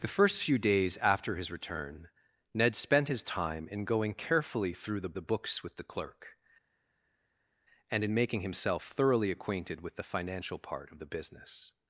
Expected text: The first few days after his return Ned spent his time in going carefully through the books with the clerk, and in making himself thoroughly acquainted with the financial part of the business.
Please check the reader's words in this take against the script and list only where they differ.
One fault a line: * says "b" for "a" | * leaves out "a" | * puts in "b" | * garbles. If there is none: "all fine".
* puts in "the"